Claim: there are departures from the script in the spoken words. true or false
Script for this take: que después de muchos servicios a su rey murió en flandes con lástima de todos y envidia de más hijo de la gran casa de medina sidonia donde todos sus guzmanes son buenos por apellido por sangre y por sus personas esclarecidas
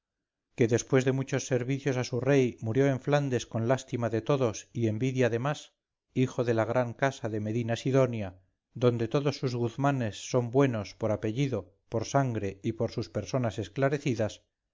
false